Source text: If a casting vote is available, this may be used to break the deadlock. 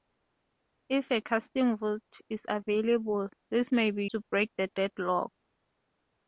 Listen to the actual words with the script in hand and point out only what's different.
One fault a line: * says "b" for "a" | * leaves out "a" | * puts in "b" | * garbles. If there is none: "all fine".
* leaves out "used"